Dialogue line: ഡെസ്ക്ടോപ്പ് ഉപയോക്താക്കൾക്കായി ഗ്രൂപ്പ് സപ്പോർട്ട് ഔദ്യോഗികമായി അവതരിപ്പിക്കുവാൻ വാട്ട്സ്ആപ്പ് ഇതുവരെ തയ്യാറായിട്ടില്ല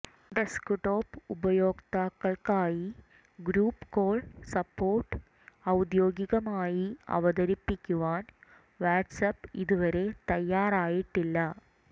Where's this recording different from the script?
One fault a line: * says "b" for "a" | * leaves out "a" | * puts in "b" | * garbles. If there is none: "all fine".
* puts in "കോൾ"